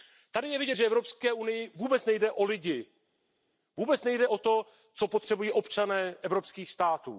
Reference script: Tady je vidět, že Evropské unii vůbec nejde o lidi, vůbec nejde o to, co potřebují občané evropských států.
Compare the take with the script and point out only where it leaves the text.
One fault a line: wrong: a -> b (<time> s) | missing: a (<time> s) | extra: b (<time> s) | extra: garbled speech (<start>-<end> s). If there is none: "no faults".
no faults